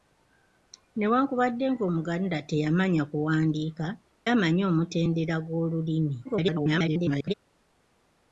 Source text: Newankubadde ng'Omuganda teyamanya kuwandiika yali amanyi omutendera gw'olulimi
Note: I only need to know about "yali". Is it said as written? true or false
false